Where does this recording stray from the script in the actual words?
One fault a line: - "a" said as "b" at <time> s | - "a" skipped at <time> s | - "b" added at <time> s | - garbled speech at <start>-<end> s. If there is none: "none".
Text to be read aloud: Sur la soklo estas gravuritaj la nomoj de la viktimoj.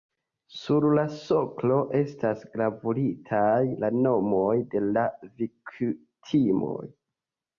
none